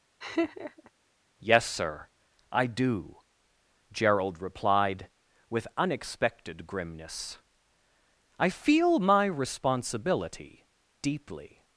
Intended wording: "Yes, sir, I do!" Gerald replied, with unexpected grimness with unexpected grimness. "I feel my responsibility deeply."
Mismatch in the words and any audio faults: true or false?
true